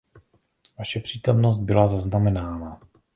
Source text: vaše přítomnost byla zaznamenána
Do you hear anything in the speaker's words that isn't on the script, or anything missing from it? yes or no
no